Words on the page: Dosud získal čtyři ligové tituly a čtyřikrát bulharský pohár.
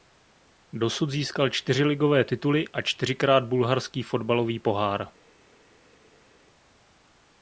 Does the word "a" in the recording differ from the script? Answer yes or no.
no